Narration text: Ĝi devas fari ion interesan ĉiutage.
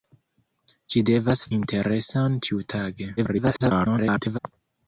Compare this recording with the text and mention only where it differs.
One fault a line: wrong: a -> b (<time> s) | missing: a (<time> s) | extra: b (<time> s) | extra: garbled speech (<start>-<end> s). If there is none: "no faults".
missing: fari ion (1.4 s)
extra: garbled speech (3.2-4.4 s)